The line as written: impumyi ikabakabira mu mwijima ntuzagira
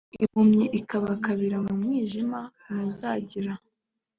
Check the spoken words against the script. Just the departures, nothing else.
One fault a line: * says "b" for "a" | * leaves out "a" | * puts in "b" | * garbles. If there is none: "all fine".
all fine